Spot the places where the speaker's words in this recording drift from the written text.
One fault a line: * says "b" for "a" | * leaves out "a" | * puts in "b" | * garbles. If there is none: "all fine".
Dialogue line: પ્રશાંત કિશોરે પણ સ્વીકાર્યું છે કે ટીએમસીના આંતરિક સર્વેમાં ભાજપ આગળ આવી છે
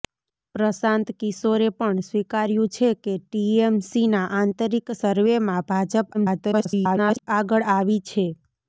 * garbles